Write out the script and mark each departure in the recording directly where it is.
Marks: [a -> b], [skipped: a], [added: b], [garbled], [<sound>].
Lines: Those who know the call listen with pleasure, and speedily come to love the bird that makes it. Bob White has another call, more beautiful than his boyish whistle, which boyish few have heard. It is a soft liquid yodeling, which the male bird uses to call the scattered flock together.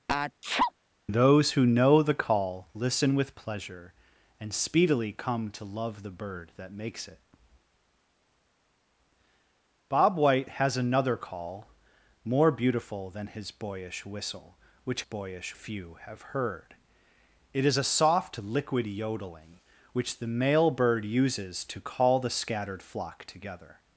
[sneeze] Those who know the call listen with pleasure, and speedily come to love the bird that makes it. Bob White has another call, more beautiful than his boyish whistle, which boyish few have heard. It is a soft liquid yodeling, which the male bird uses to call the scattered flock together.